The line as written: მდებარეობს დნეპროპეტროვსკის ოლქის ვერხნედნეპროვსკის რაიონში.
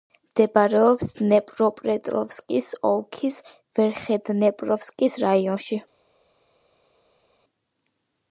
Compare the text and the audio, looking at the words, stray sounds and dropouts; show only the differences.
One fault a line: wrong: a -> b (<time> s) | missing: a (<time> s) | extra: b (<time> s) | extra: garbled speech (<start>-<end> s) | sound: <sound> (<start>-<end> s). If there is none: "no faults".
no faults